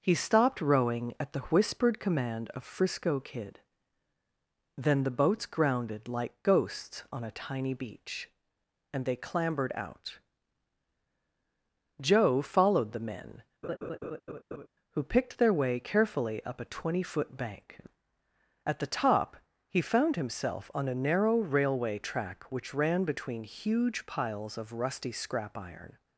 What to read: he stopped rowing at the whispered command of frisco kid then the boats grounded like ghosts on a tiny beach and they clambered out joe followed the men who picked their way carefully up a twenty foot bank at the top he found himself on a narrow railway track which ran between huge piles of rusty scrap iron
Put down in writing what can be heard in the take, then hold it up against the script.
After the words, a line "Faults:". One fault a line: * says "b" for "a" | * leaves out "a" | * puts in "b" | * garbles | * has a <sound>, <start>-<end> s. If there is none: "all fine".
he stopped rowing at the whispered command of frisco kid then the boats grounded like ghosts on a tiny beach and they clambered out joe followed the men who picked their way carefully up a twenty foot bank at the top he found himself on a narrow railway track which ran between huge piles of rusty scrap iron
Faults:
* has a laugh, 13.6-14.7 s